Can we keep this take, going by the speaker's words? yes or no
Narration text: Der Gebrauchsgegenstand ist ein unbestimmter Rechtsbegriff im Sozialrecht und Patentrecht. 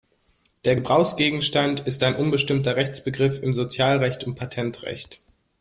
yes